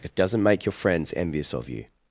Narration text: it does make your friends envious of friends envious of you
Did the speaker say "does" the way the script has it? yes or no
no